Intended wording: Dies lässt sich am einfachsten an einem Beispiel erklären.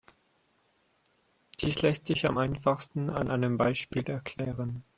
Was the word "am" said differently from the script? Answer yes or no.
no